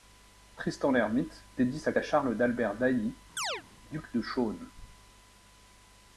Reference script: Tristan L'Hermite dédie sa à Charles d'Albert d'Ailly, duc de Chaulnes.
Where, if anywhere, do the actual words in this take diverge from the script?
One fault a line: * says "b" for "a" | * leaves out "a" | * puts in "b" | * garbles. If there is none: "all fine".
all fine